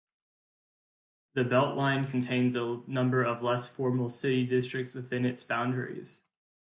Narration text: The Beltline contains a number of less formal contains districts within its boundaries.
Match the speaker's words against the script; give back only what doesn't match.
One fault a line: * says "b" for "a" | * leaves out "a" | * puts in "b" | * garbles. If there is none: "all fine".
* says "city" for "contains"